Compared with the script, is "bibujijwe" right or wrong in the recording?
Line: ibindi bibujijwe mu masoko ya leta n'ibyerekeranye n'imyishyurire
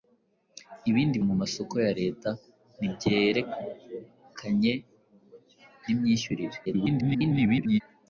wrong